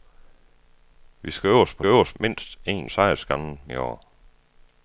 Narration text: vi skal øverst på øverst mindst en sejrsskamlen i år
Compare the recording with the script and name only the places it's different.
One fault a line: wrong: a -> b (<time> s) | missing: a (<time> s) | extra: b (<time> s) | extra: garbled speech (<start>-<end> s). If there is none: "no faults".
no faults